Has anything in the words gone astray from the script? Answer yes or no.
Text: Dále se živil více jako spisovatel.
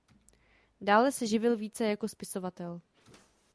no